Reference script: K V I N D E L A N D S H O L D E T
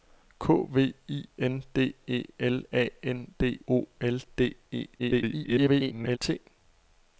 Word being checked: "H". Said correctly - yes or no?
no